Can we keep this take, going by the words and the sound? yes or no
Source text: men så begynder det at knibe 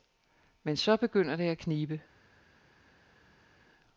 yes